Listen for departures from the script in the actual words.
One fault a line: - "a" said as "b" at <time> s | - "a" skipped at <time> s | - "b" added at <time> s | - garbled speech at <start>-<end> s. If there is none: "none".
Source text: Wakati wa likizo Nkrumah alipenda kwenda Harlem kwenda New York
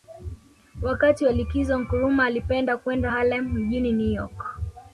- "kwenda" said as "mjini" at 3.5 s